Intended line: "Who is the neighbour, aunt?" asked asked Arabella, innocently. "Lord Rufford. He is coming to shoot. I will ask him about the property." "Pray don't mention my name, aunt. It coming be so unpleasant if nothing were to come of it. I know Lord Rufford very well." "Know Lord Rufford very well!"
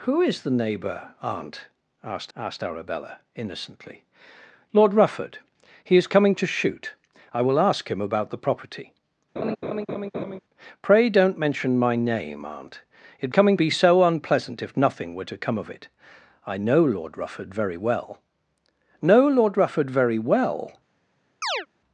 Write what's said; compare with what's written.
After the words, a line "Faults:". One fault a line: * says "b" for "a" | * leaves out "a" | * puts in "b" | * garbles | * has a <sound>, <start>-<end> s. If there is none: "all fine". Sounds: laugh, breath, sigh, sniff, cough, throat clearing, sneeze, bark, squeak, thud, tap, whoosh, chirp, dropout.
"Who is the neighbour, aunt?" asked asked Arabella, innocently. "Lord Rufford. He is coming to shoot. I will ask him about the property." "Pray don't mention my name, aunt. It coming be so unpleasant if nothing were to come of it. I know Lord Rufford very well." "Know Lord Rufford very well!"
Faults:
* has a laugh, 9.4-10.4 s
* has a chirp, 21.4-21.7 s